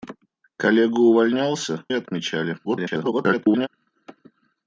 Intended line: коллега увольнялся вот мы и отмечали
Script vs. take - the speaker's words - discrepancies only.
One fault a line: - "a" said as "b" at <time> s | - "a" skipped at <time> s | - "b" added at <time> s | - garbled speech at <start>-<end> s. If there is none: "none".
- "вот мы" skipped at 1.9 s
- garbled speech at 2.6-3.7 s